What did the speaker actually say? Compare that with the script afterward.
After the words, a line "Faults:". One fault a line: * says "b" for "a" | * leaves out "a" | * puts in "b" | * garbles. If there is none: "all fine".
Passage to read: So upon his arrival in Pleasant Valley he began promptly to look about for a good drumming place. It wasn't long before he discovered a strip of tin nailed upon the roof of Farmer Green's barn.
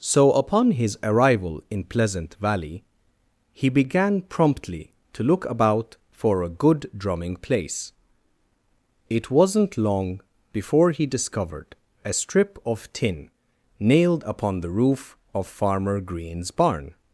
So upon his arrival in Pleasant Valley he began promptly to look about for a good drumming place. It wasn't long before he discovered a strip of tin nailed upon the roof of Farmer Green's barn.
Faults:
all fine